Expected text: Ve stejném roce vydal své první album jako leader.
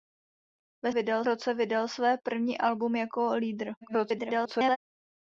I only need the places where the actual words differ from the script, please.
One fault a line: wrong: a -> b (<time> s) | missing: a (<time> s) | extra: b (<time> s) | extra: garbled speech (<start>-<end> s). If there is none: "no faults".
wrong: stejném -> vydal (0.9 s)
extra: garbled speech (3.8-4.8 s)